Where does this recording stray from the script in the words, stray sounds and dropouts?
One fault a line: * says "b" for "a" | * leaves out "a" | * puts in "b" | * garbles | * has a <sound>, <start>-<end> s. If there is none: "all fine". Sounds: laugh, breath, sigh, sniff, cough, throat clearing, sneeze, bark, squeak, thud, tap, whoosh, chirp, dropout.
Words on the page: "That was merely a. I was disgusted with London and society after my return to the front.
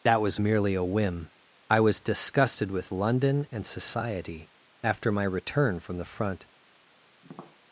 * puts in "whim"
* says "from" for "to"
* has a tap, 7.2-7.6 s